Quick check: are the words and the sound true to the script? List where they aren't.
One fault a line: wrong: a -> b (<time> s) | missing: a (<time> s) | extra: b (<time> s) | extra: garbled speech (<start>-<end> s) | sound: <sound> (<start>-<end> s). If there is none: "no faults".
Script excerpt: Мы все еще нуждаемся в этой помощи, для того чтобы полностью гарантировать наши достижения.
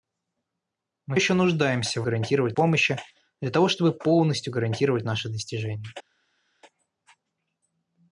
missing: все (1.2 s)
wrong: этой -> гарантировать (2.0 s)